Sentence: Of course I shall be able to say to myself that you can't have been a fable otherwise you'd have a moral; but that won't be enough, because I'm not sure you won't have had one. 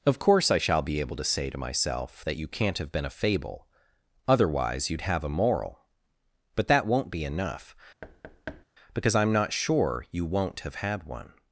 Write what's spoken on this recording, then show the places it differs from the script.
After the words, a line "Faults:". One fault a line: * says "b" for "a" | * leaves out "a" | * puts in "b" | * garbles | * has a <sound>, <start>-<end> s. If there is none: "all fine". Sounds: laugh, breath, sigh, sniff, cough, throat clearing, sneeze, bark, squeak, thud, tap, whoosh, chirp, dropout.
Of course I shall be able to say to myself that you can't have been a fable otherwise you'd have a moral; but that won't be enough, because I'm not sure you won't have had one.
Faults:
* has a thud, 8.0-8.6 s